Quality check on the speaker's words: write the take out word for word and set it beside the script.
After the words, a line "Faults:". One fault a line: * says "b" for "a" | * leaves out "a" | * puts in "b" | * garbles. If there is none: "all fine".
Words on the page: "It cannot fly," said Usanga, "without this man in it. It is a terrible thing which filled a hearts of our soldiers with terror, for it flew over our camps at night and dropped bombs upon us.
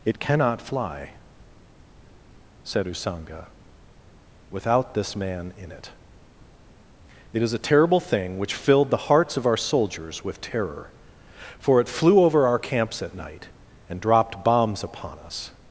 "It cannot fly," said Usanga, "without this man in it. It is a terrible thing which filled the hearts of our soldiers with terror, for it flew over our camps at night and dropped bombs upon us.
Faults:
* says "the" for "a"